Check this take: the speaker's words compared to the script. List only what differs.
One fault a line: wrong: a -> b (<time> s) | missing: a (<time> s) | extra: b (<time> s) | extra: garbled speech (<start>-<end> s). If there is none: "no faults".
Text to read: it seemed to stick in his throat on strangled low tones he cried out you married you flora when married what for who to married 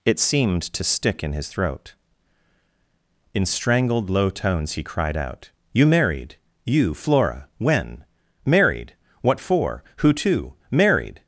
wrong: on -> in (3.3 s)